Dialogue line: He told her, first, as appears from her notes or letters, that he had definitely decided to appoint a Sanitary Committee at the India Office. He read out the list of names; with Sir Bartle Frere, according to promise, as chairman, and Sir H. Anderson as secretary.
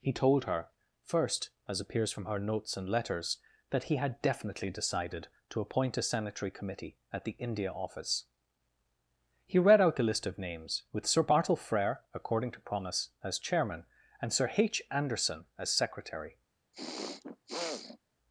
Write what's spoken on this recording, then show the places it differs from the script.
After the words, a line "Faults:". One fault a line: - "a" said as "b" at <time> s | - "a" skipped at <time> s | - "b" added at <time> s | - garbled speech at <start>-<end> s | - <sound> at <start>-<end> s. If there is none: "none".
He told her, first, as appears from her notes and letters, that he had definitely decided to appoint a Sanitary Committee at the India Office. He read out the list of names; with Sir Bartle Frere, according to promise, as chairman, and Sir H. Anderson as secretary.
Faults:
- "or" said as "and" at 2.8 s
- throat clearing at 16.7-18.0 s